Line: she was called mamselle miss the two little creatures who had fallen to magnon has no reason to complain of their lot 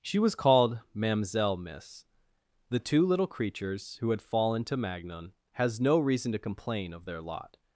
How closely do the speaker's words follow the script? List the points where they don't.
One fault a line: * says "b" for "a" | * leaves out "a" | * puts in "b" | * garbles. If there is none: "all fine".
all fine